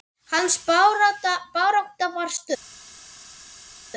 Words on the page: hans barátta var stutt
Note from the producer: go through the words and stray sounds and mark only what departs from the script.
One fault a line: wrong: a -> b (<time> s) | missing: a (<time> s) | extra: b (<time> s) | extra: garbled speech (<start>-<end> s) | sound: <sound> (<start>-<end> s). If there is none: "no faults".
no faults